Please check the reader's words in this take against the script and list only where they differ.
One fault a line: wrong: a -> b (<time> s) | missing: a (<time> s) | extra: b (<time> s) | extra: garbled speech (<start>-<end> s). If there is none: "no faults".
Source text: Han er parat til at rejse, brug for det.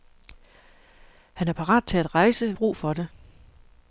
no faults